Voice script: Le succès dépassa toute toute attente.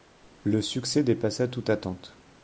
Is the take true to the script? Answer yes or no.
no